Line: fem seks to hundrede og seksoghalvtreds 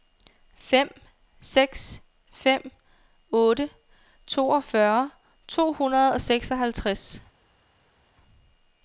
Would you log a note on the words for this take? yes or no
yes